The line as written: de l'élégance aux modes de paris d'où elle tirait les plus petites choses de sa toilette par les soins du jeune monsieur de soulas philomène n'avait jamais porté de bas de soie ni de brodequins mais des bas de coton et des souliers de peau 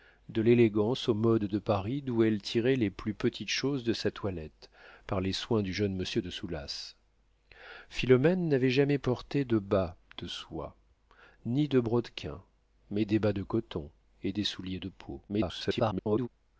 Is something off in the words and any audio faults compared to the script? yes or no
yes